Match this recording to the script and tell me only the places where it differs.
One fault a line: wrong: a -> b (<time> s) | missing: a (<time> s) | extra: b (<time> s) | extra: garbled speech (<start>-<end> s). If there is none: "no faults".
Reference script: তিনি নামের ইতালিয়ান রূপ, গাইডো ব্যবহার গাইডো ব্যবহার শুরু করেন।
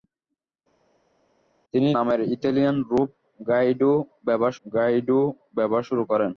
no faults